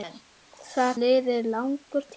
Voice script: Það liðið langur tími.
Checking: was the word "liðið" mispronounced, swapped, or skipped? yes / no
no